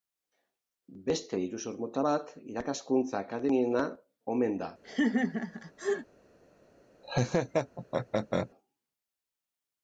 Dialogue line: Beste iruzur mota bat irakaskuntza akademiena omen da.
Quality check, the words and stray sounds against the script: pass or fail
fail